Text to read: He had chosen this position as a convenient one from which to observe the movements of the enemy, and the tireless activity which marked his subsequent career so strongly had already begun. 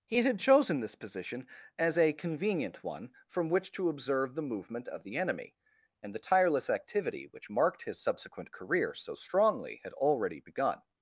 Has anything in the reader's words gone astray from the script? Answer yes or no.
yes